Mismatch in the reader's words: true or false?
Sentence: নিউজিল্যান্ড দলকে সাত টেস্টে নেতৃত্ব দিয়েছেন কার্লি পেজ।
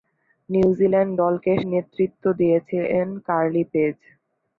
true